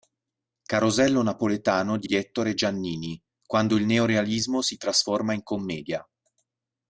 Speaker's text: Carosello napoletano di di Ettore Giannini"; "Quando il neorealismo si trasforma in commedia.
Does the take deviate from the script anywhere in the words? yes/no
no